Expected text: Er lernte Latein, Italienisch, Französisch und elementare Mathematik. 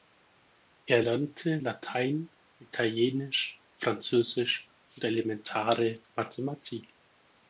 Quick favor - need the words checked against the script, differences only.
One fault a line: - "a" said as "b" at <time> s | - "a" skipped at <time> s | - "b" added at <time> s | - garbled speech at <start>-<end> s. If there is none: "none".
none